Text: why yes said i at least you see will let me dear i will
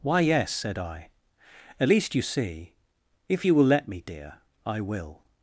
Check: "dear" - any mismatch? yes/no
no